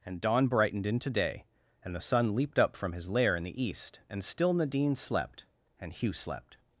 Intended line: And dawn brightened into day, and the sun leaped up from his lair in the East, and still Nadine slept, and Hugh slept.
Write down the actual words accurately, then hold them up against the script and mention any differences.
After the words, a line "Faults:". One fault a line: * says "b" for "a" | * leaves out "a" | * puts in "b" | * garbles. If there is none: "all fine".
And dawn brightened into day, and the sun leaped up from his lair in the East, and still Nadine slept, and Hugh slept.
Faults:
all fine